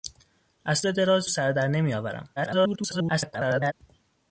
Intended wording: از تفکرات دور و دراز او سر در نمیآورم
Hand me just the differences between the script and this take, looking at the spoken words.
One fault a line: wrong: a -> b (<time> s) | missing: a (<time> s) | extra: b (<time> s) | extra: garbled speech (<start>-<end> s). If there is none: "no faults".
missing: تفکرات دور (0.8 s)
missing: او (1.3 s)
extra: garbled speech (2.4-3.7 s)